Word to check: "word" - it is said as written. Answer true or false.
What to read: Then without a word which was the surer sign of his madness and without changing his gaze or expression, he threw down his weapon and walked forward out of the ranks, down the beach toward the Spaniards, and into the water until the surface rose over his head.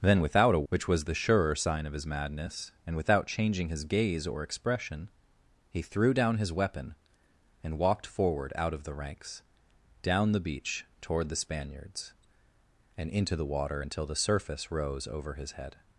false